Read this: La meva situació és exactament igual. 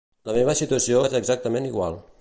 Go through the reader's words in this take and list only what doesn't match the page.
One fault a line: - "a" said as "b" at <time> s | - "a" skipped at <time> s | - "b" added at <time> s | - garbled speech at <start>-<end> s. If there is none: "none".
none